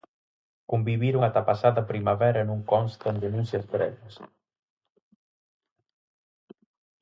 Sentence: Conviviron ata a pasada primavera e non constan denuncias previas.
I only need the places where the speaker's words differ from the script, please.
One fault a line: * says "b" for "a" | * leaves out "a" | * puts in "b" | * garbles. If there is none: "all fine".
all fine